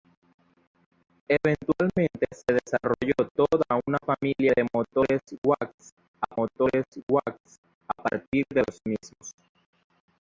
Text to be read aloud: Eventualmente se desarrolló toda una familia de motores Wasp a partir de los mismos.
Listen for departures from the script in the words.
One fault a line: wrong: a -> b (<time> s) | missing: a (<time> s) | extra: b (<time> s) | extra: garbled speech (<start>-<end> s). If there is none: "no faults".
extra: motores Wasp a (6.3 s)